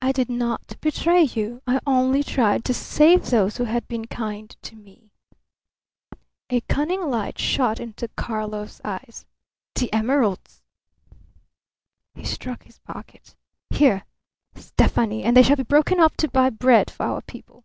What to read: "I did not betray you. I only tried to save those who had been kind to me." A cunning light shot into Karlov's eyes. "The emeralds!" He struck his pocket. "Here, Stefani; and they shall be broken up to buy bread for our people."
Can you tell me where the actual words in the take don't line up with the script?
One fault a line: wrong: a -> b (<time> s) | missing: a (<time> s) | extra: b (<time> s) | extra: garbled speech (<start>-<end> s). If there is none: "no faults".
no faults